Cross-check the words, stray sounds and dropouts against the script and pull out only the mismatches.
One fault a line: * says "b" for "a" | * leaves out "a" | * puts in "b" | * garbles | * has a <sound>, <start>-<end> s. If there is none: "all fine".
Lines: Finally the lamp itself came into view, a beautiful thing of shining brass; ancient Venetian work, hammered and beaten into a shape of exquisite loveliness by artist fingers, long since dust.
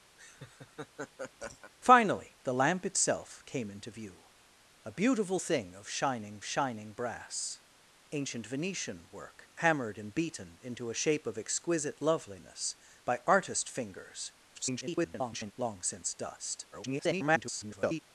* has a laugh, 0.2-1.7 s
* puts in "shining"
* garbles
* garbles